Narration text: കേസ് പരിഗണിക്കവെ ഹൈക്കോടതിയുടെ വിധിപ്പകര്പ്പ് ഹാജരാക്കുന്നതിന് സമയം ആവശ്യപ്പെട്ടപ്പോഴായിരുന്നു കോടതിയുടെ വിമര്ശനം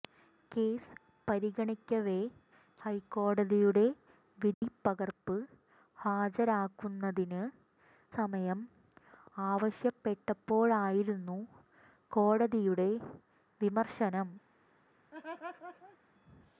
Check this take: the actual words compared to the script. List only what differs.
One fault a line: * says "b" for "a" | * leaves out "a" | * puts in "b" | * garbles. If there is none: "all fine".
all fine